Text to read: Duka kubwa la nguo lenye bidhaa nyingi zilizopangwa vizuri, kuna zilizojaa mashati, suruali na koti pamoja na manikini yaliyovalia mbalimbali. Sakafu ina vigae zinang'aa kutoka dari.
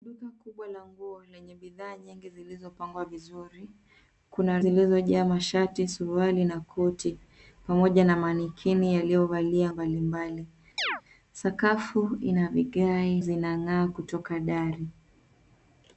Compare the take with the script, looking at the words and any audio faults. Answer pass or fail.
fail